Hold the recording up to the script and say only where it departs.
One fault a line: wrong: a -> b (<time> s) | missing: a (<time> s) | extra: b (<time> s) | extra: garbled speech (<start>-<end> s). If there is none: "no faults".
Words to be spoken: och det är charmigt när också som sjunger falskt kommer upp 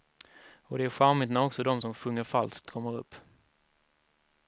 extra: de (1.6 s)